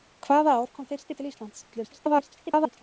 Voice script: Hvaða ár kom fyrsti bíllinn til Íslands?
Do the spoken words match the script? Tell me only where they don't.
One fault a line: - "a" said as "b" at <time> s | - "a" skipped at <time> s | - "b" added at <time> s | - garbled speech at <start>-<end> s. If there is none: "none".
- "bíllinn" skipped at 1.2 s
- garbled speech at 1.7-2.8 s